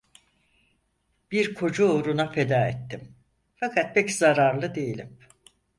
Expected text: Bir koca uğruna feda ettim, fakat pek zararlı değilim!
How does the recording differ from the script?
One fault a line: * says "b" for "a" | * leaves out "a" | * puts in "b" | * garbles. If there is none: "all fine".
all fine